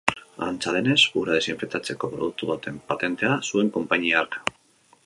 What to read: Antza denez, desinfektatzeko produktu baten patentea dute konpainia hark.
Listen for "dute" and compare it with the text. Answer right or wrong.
wrong